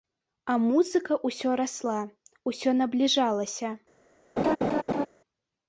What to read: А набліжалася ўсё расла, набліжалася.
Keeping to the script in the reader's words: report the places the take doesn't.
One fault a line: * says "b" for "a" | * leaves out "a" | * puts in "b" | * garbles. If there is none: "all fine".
* says "музыка" for "набліжалася"
* puts in "усё"